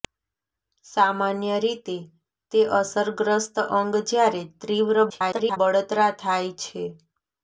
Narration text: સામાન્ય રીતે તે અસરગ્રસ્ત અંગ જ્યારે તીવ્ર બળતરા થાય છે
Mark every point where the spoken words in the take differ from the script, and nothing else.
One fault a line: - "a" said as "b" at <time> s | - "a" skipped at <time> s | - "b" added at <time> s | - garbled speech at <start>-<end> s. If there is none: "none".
- garbled speech at 5.1-5.6 s